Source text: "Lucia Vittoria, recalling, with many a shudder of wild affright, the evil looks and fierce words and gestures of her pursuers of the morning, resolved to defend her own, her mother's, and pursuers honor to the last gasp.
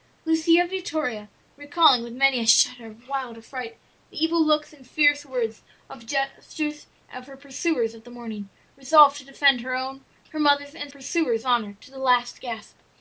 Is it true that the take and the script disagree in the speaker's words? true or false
false